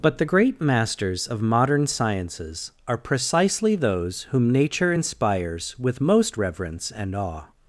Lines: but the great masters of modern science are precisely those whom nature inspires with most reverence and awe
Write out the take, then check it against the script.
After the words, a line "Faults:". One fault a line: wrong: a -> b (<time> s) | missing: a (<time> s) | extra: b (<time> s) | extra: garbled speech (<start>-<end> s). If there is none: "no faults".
but the great masters of modern sciences are precisely those whom nature inspires with most reverence and awe
Faults:
wrong: science -> sciences (1.9 s)